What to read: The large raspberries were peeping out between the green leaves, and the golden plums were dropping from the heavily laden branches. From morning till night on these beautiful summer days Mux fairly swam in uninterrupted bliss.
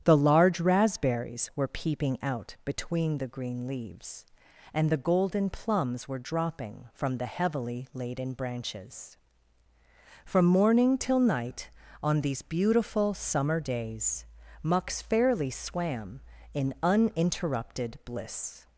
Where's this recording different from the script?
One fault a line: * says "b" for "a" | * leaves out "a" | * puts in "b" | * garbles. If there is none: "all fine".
all fine